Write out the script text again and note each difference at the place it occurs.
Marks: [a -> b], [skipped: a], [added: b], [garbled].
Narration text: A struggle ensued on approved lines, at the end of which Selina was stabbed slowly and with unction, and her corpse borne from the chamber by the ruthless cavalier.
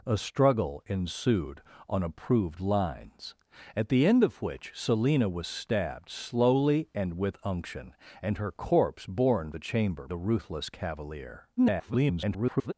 A struggle ensued on approved lines, at the end of which Selina was stabbed slowly and with unction, and her corpse borne [skipped: from] the chamber [skipped: by] the ruthless cavalier. [garbled]